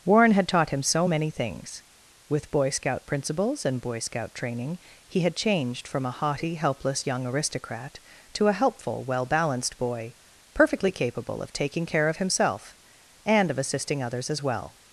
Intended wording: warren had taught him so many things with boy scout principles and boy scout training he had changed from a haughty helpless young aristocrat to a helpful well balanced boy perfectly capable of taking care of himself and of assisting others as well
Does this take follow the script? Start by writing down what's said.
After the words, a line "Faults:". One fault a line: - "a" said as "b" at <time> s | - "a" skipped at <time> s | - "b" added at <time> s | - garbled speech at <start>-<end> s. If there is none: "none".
warren had taught him so many things with boy scout principles and boy scout training he had changed from a haughty helpless young aristocrat to a helpful well balanced boy perfectly capable of taking care of himself and of assisting others as well
Faults:
none